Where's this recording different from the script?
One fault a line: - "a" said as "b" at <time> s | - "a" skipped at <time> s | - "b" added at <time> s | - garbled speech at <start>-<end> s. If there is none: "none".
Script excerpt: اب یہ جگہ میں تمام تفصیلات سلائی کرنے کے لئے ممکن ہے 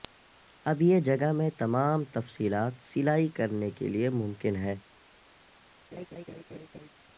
none